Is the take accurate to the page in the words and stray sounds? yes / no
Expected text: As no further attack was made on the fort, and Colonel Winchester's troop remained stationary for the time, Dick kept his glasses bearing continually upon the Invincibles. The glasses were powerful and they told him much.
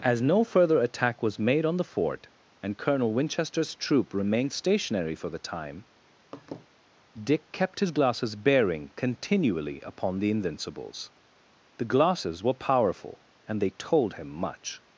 no